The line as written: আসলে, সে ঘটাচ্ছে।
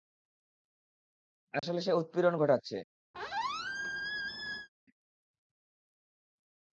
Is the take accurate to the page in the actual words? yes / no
no